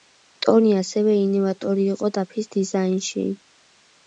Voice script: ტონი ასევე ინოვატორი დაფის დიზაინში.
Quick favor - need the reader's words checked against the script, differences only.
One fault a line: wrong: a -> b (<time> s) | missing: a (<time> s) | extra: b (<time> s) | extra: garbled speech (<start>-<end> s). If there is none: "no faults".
extra: იყო (2.0 s)